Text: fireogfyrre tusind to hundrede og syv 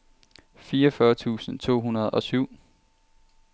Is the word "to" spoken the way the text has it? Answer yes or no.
yes